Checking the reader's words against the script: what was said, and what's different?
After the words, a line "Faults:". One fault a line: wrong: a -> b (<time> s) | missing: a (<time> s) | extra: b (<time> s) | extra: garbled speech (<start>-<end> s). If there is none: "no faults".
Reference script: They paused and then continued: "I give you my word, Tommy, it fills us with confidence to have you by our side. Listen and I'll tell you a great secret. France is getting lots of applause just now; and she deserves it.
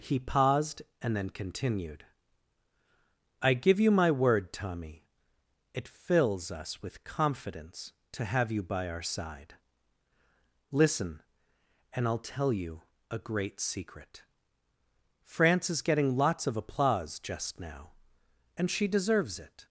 He paused and then continued: "I give you my word, Tommy, it fills us with confidence to have you by our side. Listen and I'll tell you a great secret. France is getting lots of applause just now; and she deserves it.
Faults:
wrong: They -> He (0.0 s)